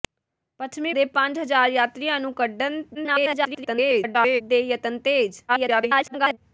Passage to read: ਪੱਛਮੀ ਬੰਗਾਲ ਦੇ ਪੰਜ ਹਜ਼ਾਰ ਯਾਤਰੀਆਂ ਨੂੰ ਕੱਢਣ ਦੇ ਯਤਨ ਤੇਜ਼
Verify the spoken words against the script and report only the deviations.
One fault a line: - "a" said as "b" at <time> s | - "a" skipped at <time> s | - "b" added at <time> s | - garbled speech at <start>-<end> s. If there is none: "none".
- "ਬੰਗਾਲ" skipped at 0.9 s
- garbled speech at 2.9-4.4 s
- garbled speech at 5.5-6.4 s